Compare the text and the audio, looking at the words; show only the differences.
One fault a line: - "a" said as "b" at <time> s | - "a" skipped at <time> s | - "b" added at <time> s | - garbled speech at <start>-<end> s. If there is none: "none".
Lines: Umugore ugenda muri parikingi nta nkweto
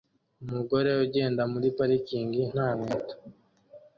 none